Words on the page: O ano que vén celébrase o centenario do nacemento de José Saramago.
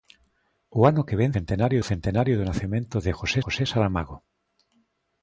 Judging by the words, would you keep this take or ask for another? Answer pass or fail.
fail